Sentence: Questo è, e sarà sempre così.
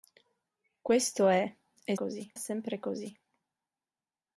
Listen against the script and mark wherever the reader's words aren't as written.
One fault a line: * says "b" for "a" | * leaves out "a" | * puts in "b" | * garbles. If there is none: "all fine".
* says "così" for "sarà"